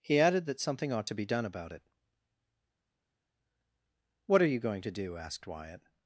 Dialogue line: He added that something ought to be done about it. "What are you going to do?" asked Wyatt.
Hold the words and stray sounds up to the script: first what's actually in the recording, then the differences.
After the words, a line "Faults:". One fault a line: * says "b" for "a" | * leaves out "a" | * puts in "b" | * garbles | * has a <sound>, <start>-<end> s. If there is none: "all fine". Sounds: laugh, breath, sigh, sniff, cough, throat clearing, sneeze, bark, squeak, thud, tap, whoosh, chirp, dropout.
He added that something ought to be done about it. "What are you going to do?" asked Wyatt.
Faults:
all fine